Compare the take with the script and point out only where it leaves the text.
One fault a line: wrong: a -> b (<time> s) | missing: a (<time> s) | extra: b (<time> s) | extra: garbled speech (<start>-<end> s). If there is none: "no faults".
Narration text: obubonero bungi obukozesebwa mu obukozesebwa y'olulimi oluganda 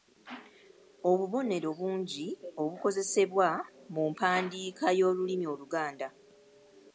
wrong: obukozesebwa -> mpandiika (4.1 s)